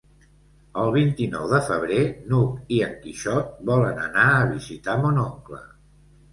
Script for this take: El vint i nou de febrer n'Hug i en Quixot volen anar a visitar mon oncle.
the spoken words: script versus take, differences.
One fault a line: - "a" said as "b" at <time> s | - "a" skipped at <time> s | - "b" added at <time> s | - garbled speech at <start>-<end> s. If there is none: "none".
none